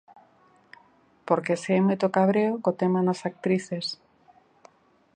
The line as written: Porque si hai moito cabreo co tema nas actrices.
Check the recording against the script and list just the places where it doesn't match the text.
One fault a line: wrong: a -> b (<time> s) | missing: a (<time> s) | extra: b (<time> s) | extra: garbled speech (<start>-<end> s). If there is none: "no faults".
no faults